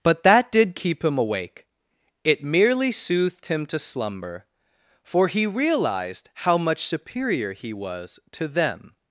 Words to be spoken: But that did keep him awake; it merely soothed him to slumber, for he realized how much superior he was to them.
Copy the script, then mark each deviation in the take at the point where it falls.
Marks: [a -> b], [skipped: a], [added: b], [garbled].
But that did keep him awake; it merely soothed him to slumber, for he realized how much superior he was to them.